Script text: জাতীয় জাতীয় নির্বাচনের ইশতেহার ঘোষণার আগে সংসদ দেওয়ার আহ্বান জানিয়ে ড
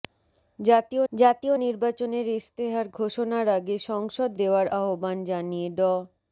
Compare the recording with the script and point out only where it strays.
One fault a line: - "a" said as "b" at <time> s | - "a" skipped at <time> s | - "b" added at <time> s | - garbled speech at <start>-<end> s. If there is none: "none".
none